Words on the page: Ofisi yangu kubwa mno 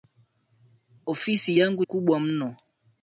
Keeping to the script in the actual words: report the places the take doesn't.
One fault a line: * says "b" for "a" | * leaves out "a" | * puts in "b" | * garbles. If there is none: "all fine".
all fine